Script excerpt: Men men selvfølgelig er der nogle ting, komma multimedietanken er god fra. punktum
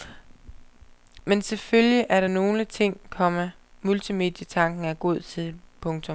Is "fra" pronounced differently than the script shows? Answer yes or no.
yes